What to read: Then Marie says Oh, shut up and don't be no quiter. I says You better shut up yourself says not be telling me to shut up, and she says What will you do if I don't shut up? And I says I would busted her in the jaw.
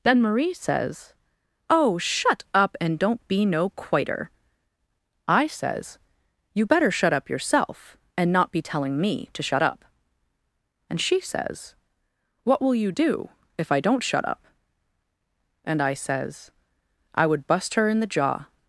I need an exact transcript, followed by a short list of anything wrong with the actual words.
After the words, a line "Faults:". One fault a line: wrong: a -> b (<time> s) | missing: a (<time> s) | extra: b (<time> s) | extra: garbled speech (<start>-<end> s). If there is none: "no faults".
Then Marie says Oh, shut up and don't be no quiter. I says You better shut up yourself and not be telling me to shut up, and she says What will you do if I don't shut up? And I says I would bust her in the jaw.
Faults:
wrong: says -> and (8.2 s)
wrong: busted -> bust (17.5 s)